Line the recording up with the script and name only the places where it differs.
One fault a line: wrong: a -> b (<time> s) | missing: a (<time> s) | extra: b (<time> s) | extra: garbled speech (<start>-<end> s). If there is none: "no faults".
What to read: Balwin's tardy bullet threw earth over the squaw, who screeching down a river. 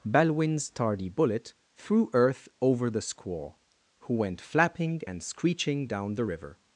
extra: went flapping and (4.2 s)
wrong: a -> the (6.1 s)